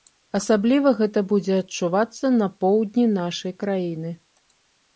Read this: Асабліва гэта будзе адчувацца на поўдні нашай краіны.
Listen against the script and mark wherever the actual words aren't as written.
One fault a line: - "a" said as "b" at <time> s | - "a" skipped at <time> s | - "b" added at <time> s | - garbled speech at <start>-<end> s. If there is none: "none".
none